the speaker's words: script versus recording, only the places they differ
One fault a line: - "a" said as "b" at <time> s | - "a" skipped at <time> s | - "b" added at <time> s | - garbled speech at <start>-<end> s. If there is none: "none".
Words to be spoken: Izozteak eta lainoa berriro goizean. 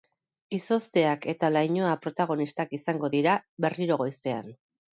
- "protagonistak izango dira" added at 2.1 s